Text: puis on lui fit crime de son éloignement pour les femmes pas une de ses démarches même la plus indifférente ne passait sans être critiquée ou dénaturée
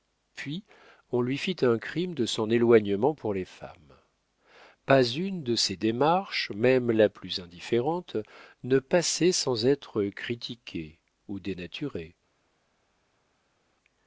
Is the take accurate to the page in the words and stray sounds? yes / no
no